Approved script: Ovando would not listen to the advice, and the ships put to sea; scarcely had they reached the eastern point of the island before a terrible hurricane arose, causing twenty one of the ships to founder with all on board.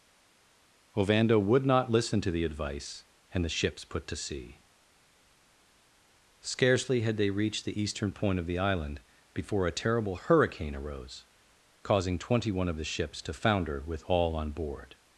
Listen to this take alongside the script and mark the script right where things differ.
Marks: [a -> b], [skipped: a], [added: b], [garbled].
Ovando would not listen to the advice, and the ships put to sea; scarcely had they reached the eastern point of the island before a terrible hurricane arose, causing twenty one of the ships to founder with all on board.